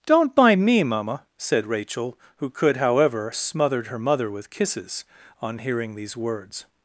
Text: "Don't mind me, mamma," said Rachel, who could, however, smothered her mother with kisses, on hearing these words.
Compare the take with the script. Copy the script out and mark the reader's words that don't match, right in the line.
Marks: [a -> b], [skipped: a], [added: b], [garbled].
"Don't mind me, mamma," said Rachel, who could, however, smothered her mother with kisses, on hearing these words.